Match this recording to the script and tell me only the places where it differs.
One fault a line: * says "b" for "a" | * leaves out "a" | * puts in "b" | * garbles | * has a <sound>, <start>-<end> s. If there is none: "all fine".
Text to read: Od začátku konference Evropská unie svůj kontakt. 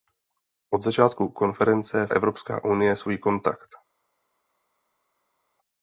all fine